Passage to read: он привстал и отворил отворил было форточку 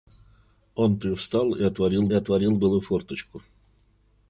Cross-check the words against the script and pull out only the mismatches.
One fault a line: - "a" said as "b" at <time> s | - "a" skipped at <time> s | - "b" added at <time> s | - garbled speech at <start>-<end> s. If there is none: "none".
none